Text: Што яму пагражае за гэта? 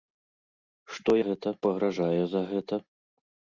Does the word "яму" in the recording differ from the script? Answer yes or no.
yes